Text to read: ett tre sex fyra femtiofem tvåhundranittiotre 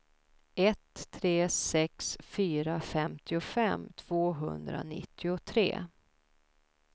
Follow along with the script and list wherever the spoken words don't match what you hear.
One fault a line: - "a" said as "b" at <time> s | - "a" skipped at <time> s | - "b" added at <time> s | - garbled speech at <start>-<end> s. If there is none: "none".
none